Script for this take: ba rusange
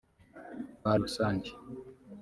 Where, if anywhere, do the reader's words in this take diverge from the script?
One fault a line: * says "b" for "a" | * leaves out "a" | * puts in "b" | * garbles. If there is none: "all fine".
all fine